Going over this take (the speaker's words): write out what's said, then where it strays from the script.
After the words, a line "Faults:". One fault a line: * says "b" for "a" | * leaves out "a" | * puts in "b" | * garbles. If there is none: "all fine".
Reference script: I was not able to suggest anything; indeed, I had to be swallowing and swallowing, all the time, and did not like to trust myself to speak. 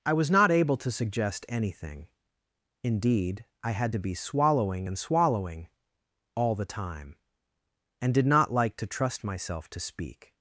I was not able to suggest anything; indeed, I had to be swallowing and swallowing, all the time, and did not like to trust myself to speak.
Faults:
all fine